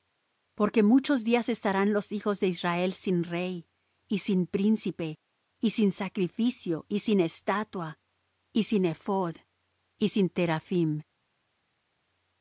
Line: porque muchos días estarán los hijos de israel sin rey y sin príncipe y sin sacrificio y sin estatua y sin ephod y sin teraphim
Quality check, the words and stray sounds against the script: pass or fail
pass